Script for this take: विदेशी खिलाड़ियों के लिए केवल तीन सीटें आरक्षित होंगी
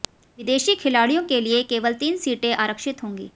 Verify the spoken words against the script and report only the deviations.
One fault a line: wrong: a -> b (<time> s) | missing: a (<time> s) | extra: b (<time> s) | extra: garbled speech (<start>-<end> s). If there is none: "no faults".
no faults